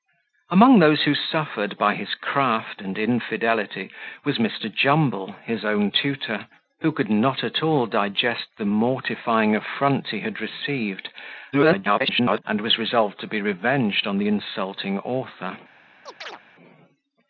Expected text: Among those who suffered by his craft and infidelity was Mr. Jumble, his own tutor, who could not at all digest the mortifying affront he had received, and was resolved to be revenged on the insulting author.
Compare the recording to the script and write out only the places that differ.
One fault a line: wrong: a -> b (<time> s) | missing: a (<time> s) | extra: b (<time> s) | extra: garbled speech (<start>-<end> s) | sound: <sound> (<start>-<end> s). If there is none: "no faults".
extra: garbled speech (11.5-12.4 s)
sound: chirp (16.1-16.4 s)